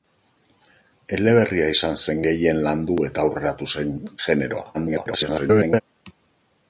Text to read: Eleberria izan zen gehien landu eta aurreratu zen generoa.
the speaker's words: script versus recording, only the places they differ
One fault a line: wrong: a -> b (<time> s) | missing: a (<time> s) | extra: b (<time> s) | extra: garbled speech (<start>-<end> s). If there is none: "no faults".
extra: garbled speech (4.7-5.8 s)